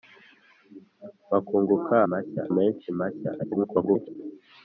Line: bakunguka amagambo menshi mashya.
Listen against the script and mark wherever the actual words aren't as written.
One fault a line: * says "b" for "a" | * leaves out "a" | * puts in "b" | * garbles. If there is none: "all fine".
* says "mashya" for "amagambo"
* garbles